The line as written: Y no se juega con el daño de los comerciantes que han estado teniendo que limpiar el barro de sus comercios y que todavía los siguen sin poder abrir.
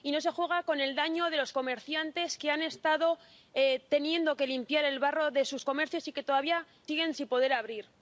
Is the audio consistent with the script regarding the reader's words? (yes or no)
no